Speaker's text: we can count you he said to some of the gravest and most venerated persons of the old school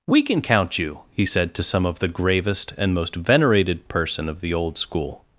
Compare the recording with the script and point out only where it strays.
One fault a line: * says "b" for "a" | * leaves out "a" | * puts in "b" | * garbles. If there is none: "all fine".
* says "person" for "persons"